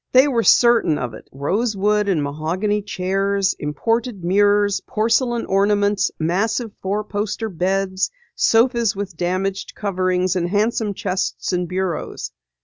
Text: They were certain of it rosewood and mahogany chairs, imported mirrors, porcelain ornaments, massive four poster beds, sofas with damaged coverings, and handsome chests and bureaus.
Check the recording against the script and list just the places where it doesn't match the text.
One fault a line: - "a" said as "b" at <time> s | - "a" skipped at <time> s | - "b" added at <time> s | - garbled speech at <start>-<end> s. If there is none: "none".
none